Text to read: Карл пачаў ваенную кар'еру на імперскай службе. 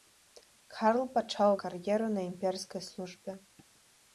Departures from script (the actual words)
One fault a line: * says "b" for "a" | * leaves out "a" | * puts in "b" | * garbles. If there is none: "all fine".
* leaves out "ваенную"